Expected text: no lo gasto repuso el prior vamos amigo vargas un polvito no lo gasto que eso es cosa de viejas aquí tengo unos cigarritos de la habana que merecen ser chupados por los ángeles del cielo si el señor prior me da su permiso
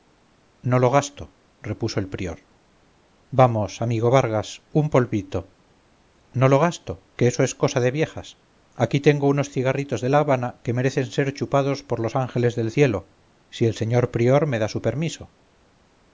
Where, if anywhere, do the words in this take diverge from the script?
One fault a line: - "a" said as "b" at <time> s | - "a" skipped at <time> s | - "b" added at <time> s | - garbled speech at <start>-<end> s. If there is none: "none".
none